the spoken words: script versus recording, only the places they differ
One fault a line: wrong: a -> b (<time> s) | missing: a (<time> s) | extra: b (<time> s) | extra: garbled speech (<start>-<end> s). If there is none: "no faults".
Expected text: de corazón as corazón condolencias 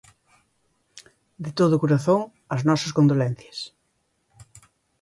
extra: todo (1.6 s)
wrong: corazón -> nosas (2.7 s)